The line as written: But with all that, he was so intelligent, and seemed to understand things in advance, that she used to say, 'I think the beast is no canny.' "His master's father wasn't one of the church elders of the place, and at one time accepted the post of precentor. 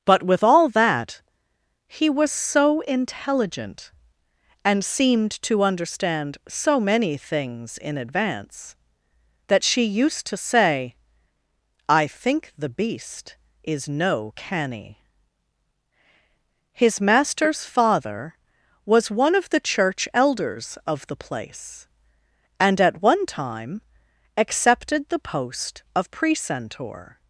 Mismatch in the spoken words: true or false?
true